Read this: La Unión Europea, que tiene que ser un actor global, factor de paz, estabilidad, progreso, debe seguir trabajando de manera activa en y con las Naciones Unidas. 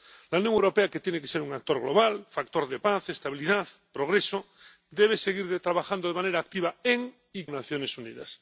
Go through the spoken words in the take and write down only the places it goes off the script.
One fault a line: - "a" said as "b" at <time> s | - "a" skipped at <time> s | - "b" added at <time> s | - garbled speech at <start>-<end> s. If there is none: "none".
- "con" skipped at 7.5 s